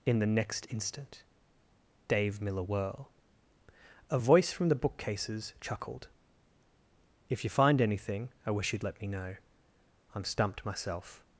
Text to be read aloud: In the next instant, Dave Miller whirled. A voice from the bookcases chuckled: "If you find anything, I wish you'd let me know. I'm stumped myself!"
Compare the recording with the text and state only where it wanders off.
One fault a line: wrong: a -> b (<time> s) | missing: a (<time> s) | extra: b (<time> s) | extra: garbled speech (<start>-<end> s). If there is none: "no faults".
wrong: whirled -> whirl (2.6 s)